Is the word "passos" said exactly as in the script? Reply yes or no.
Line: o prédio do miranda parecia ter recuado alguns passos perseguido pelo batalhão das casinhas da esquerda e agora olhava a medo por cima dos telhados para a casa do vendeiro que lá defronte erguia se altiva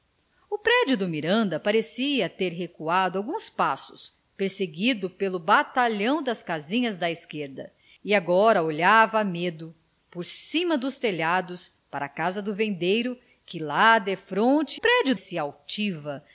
yes